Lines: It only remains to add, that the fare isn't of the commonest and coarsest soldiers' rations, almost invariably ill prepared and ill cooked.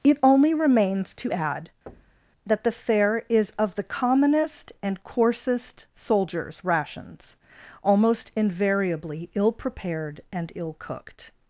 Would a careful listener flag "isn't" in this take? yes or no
yes